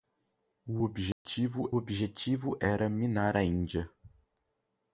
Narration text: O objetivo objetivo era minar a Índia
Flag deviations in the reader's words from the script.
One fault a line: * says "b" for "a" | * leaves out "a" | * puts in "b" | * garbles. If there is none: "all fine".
all fine